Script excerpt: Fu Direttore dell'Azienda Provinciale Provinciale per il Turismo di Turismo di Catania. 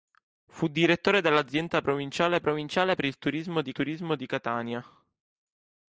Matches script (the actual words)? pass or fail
pass